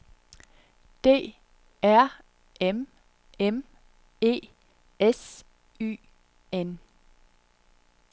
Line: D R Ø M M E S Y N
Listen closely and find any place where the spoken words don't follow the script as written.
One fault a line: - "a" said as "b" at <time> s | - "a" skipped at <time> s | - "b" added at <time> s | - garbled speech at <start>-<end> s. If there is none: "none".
- "Ø" skipped at 2.1 s